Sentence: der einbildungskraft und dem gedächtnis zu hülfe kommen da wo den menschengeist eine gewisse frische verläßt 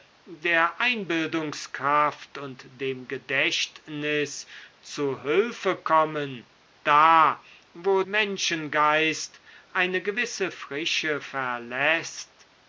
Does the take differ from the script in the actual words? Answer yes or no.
yes